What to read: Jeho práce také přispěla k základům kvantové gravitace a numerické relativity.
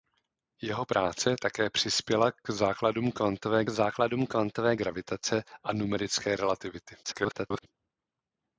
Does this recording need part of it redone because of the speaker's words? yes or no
yes